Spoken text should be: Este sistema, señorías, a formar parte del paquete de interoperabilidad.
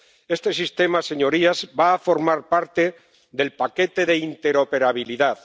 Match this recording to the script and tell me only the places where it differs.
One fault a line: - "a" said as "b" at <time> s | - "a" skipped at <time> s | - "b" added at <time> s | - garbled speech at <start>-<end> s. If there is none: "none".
- "va" added at 1.8 s